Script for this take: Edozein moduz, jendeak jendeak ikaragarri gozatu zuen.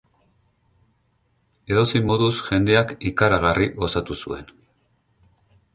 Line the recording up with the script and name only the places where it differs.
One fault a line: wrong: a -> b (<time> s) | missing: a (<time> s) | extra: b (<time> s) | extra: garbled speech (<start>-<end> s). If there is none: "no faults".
missing: jendeak (2.9 s)